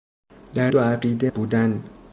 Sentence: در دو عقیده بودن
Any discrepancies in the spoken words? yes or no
no